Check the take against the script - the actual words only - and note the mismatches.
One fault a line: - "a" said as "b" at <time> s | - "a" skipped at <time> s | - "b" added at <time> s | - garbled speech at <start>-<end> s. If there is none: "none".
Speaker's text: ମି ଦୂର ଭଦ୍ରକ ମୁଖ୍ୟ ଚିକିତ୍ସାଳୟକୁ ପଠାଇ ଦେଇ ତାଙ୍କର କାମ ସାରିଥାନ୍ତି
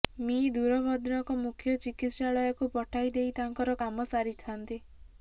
none